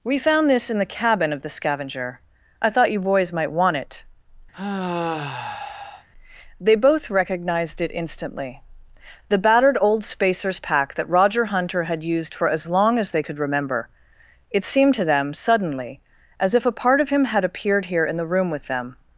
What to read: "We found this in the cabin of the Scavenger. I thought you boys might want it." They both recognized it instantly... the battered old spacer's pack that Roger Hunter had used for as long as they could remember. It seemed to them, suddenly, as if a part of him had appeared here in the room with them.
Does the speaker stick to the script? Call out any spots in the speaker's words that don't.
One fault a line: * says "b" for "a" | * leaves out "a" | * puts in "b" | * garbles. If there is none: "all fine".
all fine